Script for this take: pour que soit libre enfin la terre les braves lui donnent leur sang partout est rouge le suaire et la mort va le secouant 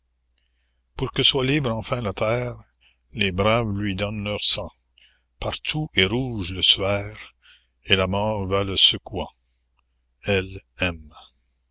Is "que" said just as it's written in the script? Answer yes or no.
yes